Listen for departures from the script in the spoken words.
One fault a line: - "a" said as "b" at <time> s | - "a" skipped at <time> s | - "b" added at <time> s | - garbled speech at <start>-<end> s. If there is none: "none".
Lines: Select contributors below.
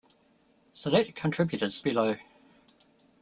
none